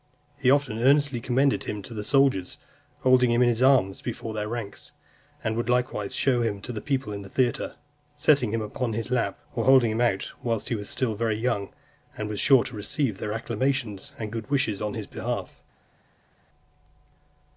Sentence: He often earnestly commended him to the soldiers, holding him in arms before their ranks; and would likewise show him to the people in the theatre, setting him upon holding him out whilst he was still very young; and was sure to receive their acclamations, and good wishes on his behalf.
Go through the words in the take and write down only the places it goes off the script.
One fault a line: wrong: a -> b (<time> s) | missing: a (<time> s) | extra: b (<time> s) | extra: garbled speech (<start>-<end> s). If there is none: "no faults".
extra: his (3.5 s)
extra: his lap or (8.9 s)